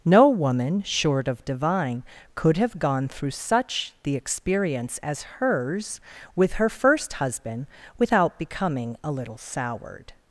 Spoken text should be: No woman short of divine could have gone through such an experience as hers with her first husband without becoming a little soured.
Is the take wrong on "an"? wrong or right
wrong